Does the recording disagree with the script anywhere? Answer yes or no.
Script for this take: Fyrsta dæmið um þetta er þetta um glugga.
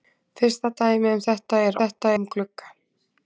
no